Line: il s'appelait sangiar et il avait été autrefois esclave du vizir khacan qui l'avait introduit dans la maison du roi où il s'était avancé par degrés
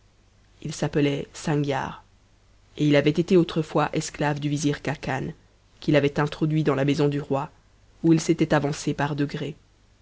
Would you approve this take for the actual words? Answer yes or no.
yes